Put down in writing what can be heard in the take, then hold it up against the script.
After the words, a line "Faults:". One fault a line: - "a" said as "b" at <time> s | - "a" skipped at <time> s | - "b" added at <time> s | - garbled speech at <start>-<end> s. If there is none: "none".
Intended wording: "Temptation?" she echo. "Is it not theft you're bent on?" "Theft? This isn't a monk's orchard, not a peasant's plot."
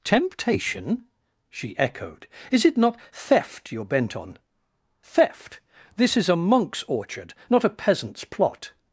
"Temptation?" she echoed. "Is it not theft you're bent on?" "Theft? This is a monk's orchard, not a peasant's plot."
Faults:
- "echo" said as "echoed" at 1.8 s
- "isn't" said as "is" at 6.2 s